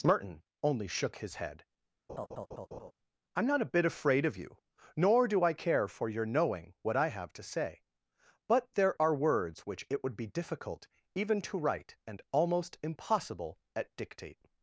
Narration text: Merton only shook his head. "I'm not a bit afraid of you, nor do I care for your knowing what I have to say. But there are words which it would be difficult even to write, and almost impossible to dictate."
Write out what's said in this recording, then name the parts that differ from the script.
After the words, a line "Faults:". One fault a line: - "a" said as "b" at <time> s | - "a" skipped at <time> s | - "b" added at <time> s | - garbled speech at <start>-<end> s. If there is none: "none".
Merton only shook his head. "I'm not a bit afraid of you, nor do I care for your knowing what I have to say. But there are words which it would be difficult even to write, and almost impossible at dictate."
Faults:
- "to" said as "at" at 13.8 s